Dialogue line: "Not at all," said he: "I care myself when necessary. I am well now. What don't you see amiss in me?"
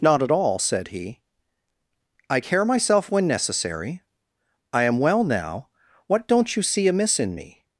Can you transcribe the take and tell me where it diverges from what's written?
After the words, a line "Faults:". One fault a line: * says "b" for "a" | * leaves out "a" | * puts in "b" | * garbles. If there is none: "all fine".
"Not at all," said he: "I care myself when necessary. I am well now. What don't you see amiss in me?"
Faults:
all fine